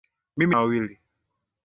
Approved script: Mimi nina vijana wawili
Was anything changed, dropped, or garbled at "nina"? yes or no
yes